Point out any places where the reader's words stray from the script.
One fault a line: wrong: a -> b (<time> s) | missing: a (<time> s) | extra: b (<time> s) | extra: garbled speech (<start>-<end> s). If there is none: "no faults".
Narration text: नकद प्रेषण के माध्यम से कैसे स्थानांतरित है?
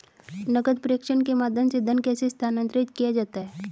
extra: धन (1.8 s)
extra: किया जाता (2.9 s)